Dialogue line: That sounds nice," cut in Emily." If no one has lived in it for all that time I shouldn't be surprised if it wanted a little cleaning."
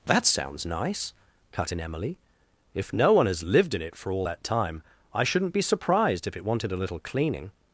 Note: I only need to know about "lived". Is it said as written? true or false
true